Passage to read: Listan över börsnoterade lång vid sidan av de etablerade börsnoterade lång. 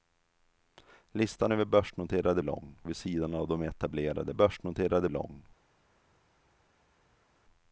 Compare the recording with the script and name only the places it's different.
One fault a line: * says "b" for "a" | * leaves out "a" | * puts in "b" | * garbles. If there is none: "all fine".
all fine